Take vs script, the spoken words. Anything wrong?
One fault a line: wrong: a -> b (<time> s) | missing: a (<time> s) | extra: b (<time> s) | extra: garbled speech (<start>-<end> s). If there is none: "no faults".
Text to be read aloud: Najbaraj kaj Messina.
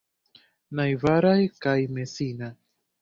no faults